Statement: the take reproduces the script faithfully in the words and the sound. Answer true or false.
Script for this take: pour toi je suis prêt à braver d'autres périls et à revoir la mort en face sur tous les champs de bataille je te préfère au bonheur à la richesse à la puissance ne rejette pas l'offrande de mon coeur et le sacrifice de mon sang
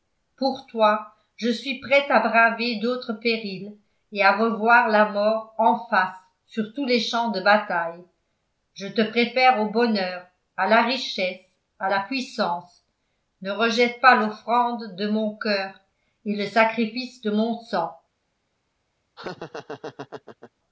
false